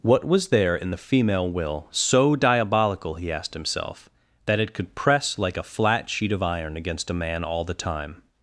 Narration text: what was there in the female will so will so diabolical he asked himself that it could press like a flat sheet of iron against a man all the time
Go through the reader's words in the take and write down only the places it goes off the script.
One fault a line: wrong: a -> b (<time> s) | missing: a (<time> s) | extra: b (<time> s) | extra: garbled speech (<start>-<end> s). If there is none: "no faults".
missing: will so (2.4 s)